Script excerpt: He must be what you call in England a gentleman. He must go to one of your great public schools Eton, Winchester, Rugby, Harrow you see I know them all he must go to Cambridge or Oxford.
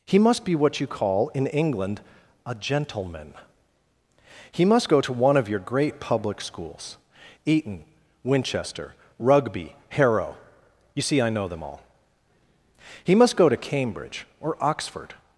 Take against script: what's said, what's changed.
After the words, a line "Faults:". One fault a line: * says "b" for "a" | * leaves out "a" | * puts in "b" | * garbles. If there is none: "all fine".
He must be what you call in England a gentleman. He must go to one of your great public schools Eton, Winchester, Rugby, Harrow you see I know them all he must go to Cambridge or Oxford.
Faults:
all fine